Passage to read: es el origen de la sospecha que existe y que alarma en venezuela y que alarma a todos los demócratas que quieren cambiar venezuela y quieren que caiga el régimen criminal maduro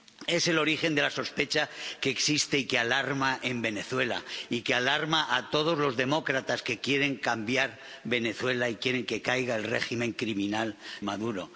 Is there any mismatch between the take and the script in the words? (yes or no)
no